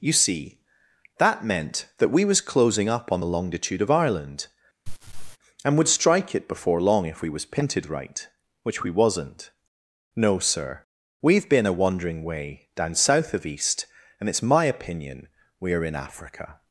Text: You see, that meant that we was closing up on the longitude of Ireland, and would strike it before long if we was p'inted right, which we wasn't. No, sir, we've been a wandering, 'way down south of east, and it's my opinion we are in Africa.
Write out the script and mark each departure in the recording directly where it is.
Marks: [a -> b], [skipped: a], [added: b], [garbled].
You see, that meant that we was closing up on the longitude of Ireland, and would strike it before long if we was p'inted right, which we wasn't. No, sir, we've been a wandering, 'way down south of east, and it's my opinion we are in Africa.